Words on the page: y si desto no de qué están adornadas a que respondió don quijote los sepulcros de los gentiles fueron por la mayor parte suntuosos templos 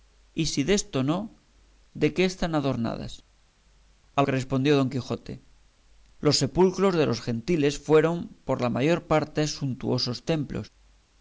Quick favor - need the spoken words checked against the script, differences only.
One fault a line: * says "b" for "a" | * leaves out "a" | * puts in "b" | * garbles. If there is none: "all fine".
all fine